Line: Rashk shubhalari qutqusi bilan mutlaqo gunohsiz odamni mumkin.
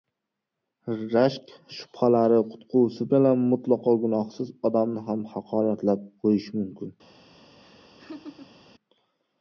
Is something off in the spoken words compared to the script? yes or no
yes